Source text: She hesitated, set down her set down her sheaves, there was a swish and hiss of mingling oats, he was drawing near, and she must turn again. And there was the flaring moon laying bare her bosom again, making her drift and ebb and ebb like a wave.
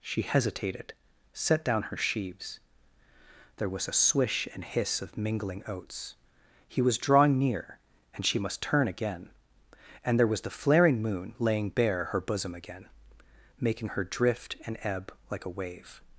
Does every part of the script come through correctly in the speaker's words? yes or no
no